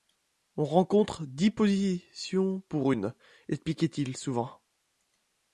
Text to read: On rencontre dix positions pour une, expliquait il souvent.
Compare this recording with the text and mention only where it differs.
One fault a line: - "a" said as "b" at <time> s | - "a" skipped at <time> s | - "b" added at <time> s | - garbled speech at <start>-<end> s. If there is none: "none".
none